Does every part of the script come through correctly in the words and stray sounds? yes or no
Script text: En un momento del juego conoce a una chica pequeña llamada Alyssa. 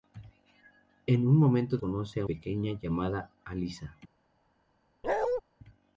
no